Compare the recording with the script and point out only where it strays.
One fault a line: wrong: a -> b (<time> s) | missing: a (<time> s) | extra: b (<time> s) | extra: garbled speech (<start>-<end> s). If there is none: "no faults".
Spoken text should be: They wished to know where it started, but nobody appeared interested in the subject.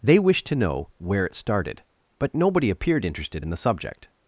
no faults